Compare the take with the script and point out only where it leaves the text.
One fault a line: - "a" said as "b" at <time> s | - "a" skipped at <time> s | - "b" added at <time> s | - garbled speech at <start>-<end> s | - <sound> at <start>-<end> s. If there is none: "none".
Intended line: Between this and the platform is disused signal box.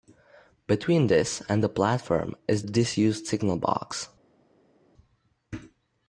none